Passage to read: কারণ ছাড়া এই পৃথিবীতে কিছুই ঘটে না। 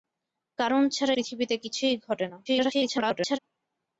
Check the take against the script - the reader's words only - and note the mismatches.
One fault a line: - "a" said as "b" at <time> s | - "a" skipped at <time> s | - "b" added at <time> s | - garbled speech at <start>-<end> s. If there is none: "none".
- "এই" skipped at 1.1 s
- garbled speech at 2.5-3.4 s